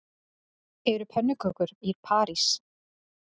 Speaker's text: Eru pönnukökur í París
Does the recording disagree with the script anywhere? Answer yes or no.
no